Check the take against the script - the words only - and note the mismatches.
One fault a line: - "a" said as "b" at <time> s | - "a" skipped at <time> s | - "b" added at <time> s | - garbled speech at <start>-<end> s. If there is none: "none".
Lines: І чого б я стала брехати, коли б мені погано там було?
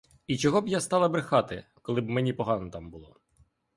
none